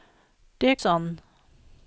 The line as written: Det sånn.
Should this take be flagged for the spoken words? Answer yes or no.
no